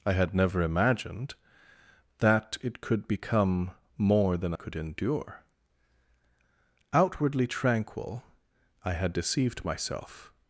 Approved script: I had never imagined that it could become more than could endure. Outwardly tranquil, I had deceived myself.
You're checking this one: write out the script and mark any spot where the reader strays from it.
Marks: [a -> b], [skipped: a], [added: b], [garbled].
I had never imagined that it could become more than could endure. Outwardly tranquil, I had deceived myself.